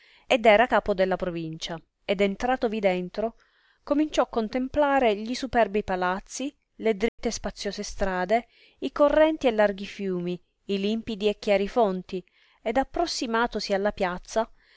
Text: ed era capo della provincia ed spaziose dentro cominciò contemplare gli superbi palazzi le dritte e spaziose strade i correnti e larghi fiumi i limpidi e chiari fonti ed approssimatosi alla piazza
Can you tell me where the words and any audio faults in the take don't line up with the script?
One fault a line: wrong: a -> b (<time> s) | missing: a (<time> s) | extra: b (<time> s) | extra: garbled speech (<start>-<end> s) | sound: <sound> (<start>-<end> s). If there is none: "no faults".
wrong: spaziose -> entratovi (2.2 s)
sound: dropout (7.1-7.2 s)